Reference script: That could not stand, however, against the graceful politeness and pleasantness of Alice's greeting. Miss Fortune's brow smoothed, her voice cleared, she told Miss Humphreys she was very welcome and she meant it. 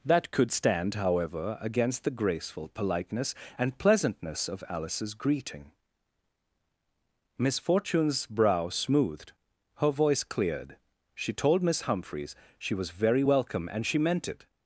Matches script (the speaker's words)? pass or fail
fail